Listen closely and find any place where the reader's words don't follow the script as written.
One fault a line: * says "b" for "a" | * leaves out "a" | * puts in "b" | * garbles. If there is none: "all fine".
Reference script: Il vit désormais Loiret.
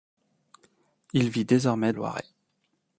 all fine